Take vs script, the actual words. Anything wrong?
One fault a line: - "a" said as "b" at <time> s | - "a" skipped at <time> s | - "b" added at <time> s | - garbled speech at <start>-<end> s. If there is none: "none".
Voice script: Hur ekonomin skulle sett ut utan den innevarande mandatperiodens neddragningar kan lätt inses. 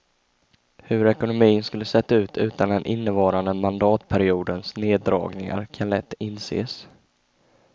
none